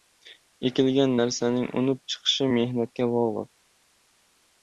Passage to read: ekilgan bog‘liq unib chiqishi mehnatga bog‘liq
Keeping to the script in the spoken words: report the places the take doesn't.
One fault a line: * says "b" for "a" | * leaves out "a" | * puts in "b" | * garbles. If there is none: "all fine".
* says "narsaning" for "bog‘liq"